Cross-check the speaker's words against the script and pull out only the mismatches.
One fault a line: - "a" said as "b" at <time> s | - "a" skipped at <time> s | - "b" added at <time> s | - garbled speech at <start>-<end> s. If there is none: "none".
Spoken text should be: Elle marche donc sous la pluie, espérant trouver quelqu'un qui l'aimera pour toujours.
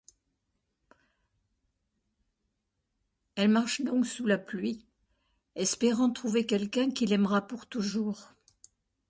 none